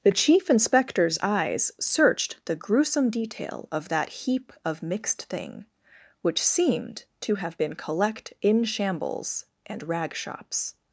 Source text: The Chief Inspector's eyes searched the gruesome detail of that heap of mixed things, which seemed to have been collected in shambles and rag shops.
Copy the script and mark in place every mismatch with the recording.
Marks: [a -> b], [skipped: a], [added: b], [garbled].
The Chief Inspector's eyes searched the gruesome detail of that heap of mixed [things, -> thing] which seemed to have been [collected -> collect] in shambles and rag shops.